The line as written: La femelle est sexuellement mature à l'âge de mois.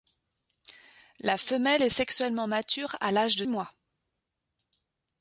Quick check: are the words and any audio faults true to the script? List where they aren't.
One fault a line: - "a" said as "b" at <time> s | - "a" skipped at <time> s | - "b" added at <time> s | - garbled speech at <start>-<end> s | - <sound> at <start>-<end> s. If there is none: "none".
none